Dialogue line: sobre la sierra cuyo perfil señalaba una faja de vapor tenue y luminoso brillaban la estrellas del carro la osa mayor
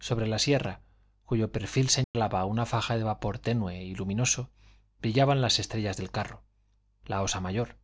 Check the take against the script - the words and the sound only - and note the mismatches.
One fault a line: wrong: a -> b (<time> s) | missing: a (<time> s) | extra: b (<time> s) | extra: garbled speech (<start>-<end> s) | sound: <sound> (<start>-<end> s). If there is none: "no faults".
sound: dropout (2.0-2.1 s)
wrong: la -> las (5.4 s)